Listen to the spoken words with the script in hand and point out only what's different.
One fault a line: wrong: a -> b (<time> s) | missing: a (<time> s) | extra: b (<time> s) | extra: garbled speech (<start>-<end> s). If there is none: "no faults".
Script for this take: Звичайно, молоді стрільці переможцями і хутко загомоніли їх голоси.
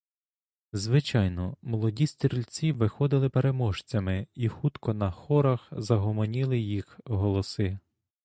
extra: виходили (2.7 s)
extra: на хорах (4.9 s)